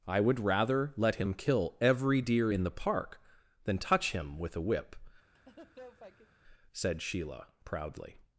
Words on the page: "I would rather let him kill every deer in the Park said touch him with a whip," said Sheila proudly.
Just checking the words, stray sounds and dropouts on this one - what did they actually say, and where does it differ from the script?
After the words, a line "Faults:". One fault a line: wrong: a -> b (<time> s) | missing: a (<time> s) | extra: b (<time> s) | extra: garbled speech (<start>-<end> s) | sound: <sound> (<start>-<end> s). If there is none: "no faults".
"I would rather let him kill every deer in the Park than touch him with a whip," said Sheila proudly.
Faults:
wrong: said -> than (3.6 s)
sound: laugh (5.3-6.4 s)